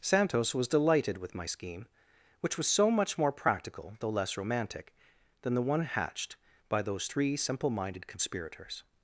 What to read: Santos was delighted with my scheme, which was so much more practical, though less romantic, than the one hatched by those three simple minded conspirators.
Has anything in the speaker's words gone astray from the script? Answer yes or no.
no